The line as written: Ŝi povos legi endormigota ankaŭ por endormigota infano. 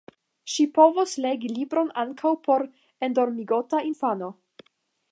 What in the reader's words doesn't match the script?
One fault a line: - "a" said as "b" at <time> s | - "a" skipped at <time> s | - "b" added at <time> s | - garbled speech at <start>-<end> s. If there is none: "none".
- "endormigota" said as "libron" at 1.6 s